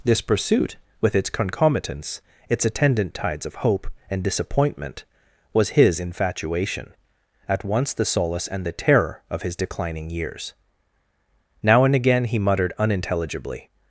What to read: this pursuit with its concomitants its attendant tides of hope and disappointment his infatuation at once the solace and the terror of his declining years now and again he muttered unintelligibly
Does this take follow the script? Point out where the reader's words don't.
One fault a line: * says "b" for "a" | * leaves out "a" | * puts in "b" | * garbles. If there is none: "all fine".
* puts in "was"